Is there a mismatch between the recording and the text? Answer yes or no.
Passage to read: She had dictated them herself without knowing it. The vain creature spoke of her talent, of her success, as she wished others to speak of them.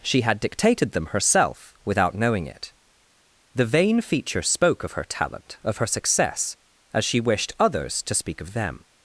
yes